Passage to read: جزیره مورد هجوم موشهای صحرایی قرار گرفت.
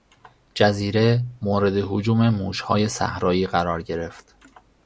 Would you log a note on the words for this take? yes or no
no